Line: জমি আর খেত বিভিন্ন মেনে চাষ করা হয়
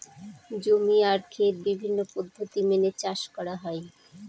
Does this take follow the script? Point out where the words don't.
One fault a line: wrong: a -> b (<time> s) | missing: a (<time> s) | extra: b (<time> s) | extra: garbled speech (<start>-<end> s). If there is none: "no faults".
extra: পদ্ধতি (2.1 s)